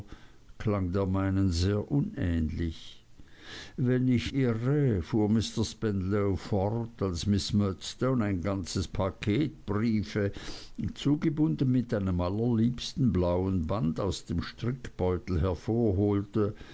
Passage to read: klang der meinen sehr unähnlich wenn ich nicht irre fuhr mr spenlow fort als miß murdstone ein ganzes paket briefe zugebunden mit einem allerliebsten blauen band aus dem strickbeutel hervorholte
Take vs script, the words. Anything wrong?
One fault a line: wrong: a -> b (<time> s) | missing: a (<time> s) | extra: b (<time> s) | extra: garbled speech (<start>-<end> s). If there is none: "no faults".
missing: nicht (4.3 s)